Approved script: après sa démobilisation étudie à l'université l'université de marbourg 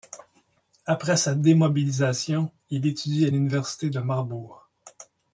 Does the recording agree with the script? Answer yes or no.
no